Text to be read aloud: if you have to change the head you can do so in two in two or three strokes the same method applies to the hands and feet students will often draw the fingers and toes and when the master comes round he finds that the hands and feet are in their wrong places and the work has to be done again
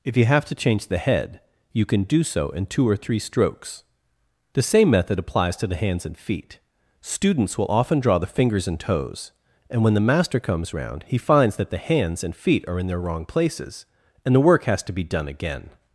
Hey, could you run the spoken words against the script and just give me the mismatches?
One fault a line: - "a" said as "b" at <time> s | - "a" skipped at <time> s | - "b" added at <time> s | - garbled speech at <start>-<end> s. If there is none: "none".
- "in two" skipped at 2.9 s